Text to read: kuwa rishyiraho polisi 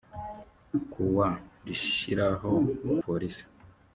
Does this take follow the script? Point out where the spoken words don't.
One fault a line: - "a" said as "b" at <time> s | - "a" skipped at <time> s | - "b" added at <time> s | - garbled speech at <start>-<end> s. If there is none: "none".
none